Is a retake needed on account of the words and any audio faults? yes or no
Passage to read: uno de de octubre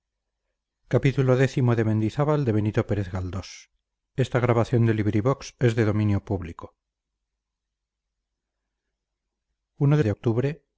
no